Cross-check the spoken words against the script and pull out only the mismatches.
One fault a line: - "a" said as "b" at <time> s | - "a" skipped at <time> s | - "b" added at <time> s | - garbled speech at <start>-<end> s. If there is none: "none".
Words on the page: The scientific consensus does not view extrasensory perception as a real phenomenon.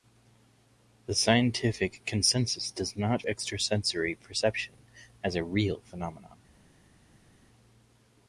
- "view" skipped at 3.2 s